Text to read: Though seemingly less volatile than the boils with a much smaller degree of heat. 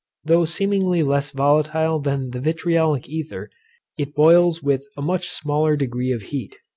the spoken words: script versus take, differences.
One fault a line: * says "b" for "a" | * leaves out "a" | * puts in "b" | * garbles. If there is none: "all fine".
* puts in "vitriolic ether it"